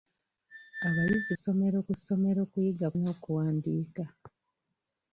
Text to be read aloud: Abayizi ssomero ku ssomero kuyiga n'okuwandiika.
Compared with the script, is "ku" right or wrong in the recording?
right